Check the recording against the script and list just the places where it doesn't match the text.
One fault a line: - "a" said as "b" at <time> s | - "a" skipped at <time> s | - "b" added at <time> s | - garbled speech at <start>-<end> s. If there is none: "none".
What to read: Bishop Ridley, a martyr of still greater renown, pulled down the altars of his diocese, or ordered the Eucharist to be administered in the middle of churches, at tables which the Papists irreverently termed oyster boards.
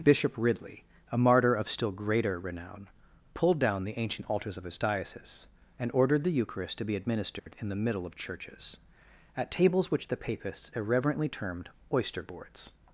- "ancient" added at 4.0 s
- "or" said as "and" at 5.8 s